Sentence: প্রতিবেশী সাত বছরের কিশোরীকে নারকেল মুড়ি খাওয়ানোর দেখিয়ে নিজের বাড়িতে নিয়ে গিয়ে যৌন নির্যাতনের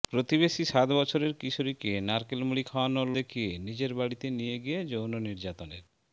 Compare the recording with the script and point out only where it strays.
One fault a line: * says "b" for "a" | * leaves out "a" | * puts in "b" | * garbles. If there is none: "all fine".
all fine